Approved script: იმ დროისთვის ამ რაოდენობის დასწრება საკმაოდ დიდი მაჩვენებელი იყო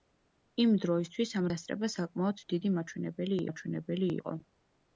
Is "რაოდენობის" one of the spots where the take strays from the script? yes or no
yes